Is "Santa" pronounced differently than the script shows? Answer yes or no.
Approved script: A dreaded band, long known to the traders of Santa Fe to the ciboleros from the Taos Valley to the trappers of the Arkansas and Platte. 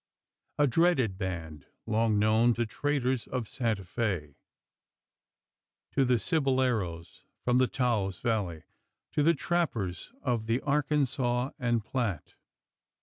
no